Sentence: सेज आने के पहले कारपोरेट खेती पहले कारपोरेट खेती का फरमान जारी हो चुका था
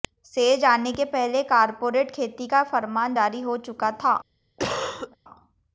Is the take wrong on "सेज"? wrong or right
right